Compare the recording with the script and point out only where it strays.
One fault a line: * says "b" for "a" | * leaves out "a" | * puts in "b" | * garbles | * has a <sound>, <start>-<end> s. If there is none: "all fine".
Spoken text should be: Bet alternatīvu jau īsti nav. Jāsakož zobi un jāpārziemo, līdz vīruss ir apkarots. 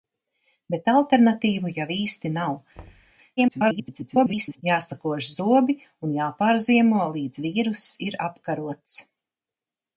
* has a thud, 2.7-3.1 s
* garbles